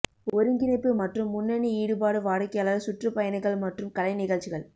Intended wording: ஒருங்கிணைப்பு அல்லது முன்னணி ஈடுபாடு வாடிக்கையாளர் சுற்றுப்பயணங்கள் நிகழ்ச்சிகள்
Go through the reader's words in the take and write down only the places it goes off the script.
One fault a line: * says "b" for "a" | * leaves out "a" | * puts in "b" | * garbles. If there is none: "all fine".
* says "மற்றும்" for "அல்லது"
* puts in "மற்றும் கலை"